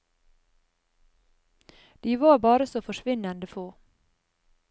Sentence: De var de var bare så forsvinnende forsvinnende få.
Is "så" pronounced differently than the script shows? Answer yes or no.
no